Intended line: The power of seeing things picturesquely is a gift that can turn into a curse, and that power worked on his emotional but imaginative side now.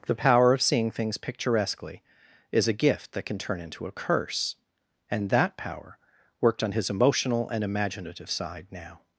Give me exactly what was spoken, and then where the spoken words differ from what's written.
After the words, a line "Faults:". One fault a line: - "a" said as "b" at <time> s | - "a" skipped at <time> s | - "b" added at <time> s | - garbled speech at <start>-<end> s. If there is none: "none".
The power of seeing things picturesquely is a gift that can turn into a curse, and that power worked on his emotional and imaginative side now.
Faults:
- "but" said as "and" at 7.5 s